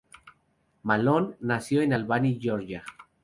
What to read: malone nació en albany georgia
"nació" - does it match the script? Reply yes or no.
yes